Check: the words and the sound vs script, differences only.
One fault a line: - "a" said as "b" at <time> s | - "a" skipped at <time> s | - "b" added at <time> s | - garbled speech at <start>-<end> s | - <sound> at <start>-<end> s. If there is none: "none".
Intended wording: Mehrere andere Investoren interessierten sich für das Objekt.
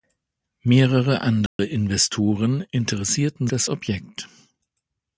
- dropout at 1.5-1.6 s
- "sich für" skipped at 3.5 s